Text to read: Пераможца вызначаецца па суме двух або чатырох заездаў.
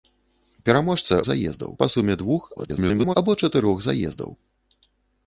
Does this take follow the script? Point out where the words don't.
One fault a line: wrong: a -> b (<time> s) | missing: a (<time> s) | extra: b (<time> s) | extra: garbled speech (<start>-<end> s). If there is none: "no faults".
wrong: вызначаецца -> заездаў (1.3 s)
extra: garbled speech (2.6-3.2 s)